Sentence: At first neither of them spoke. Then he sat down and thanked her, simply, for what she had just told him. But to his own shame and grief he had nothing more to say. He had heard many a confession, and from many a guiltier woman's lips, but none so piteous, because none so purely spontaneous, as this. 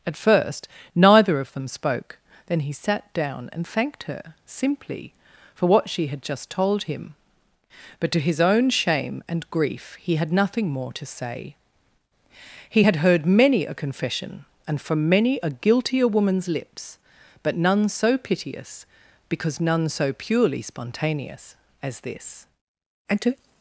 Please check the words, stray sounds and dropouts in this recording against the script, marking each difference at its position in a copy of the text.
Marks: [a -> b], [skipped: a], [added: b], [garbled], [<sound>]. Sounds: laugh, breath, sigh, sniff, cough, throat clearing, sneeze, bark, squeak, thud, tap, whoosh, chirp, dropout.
At first neither of them spoke. Then he sat down and thanked her, simply, for what she had just told him. But to his own shame and grief he had nothing more to say. He had heard many a confession, and from many a guiltier woman's lips, but none so piteous, because none so purely spontaneous, as this. [added: And to]